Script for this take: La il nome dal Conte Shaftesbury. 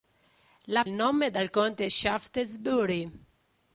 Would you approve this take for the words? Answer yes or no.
yes